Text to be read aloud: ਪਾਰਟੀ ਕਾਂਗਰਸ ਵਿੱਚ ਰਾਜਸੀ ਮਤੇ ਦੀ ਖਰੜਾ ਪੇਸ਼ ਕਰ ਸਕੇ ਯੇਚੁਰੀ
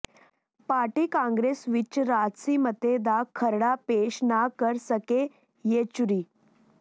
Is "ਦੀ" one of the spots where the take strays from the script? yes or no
yes